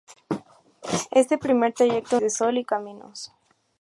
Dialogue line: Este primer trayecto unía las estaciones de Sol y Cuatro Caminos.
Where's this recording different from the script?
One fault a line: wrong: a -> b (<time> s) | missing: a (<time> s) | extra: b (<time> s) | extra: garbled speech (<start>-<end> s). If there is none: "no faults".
missing: unía las estaciones (2.2 s)
missing: Cuatro (2.6 s)